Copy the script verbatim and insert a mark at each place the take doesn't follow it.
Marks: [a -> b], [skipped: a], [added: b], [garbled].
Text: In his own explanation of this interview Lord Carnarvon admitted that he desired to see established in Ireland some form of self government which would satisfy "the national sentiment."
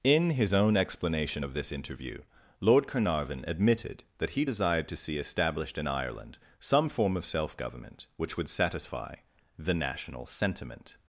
In his own explanation of this interview Lord Carnarvon admitted that he desired to see established in Ireland some form of self government which would satisfy "the national sentiment."